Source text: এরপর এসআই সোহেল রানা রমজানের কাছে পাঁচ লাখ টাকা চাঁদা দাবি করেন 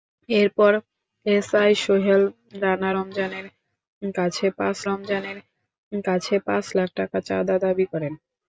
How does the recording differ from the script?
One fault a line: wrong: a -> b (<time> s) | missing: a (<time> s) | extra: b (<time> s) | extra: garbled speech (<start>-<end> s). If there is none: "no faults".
extra: রমজানের কাছে পাঁচ (4.8 s)